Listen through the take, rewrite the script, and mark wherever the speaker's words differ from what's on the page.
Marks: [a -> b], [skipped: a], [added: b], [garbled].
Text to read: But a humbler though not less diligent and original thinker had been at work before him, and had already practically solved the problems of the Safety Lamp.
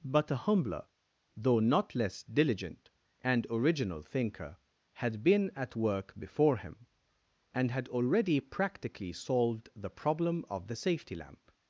But a humbler though not less diligent and original thinker had been at work before him, and had already practically solved the [problems -> problem] of the Safety Lamp.